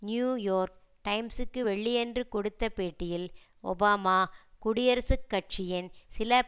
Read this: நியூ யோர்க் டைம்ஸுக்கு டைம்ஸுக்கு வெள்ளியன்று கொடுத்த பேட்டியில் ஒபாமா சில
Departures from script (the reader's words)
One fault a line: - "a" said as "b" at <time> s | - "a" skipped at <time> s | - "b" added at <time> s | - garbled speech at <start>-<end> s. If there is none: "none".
- "டைம்ஸுக்கு" skipped at 1.6 s
- "குடியரசுக் கட்சியின்" added at 4.6 s